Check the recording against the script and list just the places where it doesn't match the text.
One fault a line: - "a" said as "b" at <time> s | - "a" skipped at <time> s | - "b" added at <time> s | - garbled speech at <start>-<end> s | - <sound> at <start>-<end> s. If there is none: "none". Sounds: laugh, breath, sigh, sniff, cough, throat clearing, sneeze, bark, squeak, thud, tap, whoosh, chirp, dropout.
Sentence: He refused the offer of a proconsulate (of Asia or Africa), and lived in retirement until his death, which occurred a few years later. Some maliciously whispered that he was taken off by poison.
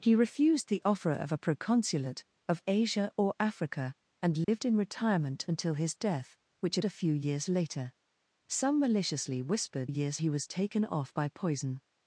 - dropout at 4.4-4.5 s
- "occurred" skipped at 6.8 s
- "that" said as "years" at 9.9 s